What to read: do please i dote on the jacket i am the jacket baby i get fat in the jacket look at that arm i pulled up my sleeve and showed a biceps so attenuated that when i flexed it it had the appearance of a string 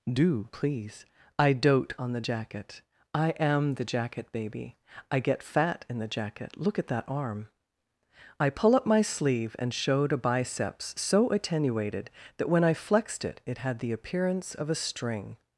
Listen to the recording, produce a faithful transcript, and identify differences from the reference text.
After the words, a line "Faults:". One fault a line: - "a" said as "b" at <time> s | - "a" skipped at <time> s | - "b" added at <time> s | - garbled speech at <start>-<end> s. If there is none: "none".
do please i dote on the jacket i am the jacket baby i get fat in the jacket look at that arm i pull up my sleeve and showed a biceps so attenuated that when i flexed it it had the appearance of a string
Faults:
- "pulled" said as "pull" at 8.5 s